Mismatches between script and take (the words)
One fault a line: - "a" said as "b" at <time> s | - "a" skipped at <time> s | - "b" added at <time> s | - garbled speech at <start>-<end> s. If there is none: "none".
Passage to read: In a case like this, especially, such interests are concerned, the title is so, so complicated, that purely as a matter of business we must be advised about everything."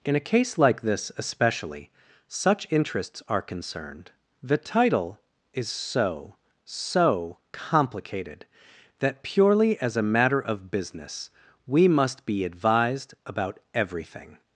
none